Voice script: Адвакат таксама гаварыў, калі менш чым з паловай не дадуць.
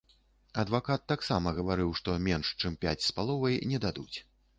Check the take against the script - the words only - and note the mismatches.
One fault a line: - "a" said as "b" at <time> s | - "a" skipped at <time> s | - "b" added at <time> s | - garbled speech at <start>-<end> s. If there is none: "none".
- "калі" said as "што" at 2.0 s
- "пяць" added at 2.9 s